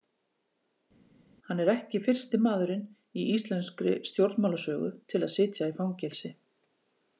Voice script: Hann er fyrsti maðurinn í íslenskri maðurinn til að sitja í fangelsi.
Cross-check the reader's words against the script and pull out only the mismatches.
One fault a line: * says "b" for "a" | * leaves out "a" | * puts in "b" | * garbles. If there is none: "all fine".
* puts in "ekki"
* says "stjórnmálasögu" for "maðurinn"